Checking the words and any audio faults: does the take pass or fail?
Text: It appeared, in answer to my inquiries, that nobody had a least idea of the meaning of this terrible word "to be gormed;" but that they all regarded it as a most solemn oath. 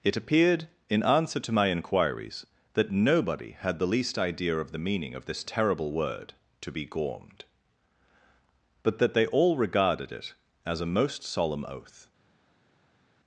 fail